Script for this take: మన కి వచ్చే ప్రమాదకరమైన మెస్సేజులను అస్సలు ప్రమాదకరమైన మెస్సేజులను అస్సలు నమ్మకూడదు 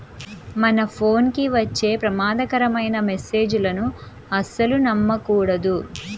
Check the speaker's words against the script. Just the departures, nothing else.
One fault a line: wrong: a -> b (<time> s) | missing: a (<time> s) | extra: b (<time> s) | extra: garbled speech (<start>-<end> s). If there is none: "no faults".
extra: ఫోన్ (0.9 s)
missing: ప్రమాదకరమైన మెస్సేజులను అస్సలు (4.8 s)